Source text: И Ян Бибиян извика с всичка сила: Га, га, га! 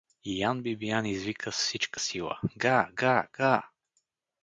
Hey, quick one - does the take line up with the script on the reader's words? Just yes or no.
yes